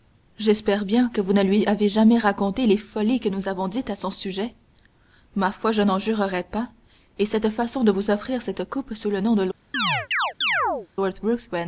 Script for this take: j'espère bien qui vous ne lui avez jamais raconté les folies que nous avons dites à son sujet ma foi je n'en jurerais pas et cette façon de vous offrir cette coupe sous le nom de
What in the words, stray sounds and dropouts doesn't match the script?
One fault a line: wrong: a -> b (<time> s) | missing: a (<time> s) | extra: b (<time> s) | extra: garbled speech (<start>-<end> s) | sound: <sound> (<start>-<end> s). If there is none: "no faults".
wrong: qui -> que (1.1 s)
sound: chirp (9.7-10.9 s)